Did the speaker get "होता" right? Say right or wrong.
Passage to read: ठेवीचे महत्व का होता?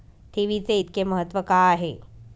wrong